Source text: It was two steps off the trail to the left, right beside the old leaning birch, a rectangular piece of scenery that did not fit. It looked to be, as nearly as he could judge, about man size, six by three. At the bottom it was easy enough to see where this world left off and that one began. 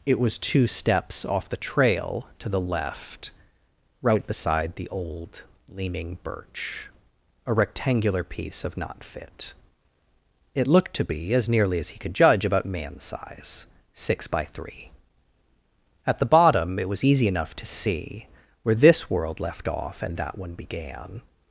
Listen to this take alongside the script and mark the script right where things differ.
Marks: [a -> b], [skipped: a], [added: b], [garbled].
It was two steps off the trail to the left, right beside the old leaning birch, a rectangular piece of [skipped: scenery that did] not fit. It looked to be, as nearly as he could judge, about man size, six by three. At the bottom it was easy enough to see where this world left off and that one began.